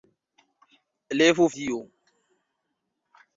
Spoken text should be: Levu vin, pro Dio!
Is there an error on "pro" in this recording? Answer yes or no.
yes